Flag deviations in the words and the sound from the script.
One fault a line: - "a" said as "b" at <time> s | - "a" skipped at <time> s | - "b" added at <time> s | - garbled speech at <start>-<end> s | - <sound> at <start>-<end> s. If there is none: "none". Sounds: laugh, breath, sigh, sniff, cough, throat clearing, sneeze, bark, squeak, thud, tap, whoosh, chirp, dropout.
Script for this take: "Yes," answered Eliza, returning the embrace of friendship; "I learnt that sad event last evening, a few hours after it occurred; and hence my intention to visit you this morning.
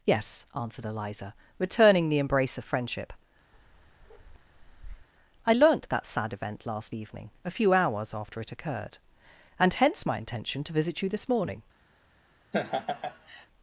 - bark at 3.5-5.1 s
- laugh at 12.5-13.5 s